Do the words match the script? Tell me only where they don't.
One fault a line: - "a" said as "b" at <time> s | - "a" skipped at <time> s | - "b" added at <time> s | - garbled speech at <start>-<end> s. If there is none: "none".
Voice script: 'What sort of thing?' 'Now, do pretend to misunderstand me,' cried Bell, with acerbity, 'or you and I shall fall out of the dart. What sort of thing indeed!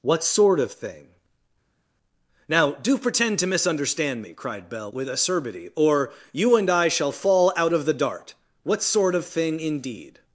none